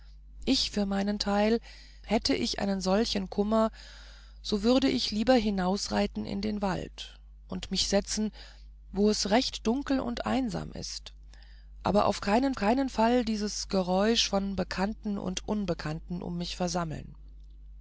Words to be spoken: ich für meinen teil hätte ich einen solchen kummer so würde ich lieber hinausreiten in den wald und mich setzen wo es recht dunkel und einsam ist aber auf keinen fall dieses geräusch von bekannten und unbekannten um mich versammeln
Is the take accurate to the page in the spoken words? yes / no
no